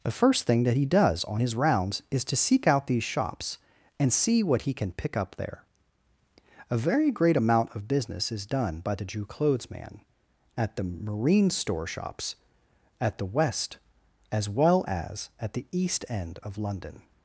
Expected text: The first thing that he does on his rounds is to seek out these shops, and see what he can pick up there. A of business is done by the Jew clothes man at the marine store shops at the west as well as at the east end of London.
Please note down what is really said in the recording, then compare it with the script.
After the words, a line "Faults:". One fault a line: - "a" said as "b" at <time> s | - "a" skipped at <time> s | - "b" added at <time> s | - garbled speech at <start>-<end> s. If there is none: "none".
The first thing that he does on his rounds is to seek out these shops, and see what he can pick up there. A very great amount of business is done by the Jew clothes man at the marine store shops at the west as well as at the east end of London.
Faults:
- "very great amount" added at 6.8 s